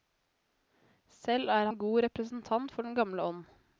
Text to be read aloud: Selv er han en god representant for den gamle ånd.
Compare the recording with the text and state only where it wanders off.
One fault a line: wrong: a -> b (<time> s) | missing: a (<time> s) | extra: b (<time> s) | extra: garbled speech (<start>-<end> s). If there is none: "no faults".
missing: han (1.7 s)